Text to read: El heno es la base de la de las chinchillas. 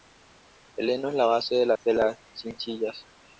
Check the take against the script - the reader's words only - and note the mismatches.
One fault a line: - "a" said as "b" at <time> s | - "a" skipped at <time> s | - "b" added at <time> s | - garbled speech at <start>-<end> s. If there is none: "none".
none